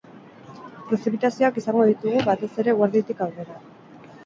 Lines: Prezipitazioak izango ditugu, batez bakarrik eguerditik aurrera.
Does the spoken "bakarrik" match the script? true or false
false